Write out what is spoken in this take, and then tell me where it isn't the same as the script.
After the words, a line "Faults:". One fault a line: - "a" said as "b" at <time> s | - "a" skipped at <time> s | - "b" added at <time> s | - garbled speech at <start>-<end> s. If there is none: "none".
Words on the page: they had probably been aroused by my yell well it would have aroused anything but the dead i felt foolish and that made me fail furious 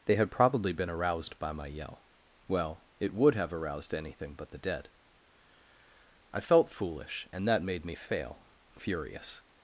they had probably been aroused by my yell well it would have aroused anything but the dead i felt foolish and that made me fail furious
Faults:
none